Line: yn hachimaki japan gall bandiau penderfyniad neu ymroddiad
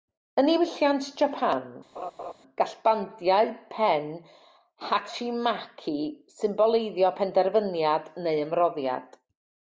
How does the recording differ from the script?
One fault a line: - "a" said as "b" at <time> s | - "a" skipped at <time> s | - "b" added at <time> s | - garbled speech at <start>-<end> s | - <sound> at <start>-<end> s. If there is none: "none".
- "hachimaki" said as "niwylliant" at 0.5 s
- laugh at 2.0-2.3 s
- "pen hachimaki symboleiddio" added at 3.7 s